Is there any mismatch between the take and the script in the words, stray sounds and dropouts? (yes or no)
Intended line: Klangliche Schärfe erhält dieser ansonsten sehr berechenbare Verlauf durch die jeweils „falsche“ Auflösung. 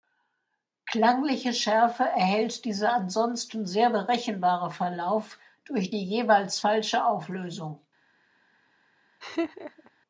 yes